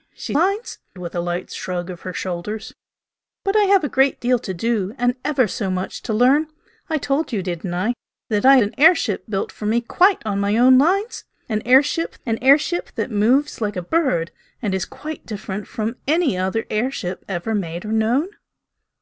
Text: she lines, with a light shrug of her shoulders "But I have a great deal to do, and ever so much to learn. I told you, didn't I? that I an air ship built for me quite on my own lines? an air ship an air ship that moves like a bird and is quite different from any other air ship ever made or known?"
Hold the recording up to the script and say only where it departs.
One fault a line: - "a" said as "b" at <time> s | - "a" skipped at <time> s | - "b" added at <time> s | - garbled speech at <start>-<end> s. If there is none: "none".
none